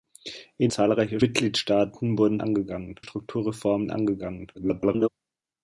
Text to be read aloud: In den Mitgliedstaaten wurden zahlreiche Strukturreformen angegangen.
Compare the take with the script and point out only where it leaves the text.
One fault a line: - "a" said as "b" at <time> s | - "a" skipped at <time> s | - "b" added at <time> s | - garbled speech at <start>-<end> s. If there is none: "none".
- "den" said as "zahlreiche" at 0.7 s
- "zahlreiche" said as "angegangen" at 2.4 s
- garbled speech at 4.5-5.1 s